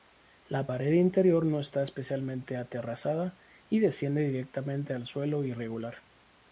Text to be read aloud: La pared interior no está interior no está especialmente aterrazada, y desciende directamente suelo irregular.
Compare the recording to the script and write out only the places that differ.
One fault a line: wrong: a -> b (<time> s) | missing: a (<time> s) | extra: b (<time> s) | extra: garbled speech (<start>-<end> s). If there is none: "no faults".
missing: interior no está (1.8 s)
extra: al (4.9 s)